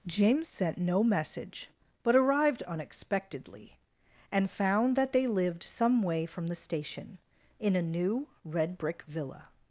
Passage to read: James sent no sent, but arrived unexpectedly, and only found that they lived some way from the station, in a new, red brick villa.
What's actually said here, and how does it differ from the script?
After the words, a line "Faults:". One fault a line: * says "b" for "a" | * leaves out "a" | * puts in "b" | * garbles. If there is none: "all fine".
James sent no message, but arrived unexpectedly, and found that they lived some way from the station, in a new, red brick villa.
Faults:
* says "message" for "sent"
* leaves out "only"